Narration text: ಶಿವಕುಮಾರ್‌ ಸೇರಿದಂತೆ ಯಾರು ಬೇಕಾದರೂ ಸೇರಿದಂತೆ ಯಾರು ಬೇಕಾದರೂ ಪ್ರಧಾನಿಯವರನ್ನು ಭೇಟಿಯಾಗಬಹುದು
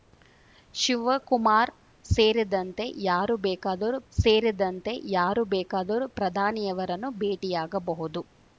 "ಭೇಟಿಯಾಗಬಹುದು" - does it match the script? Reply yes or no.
yes